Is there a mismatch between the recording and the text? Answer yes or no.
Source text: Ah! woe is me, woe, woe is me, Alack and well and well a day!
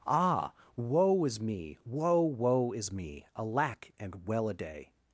yes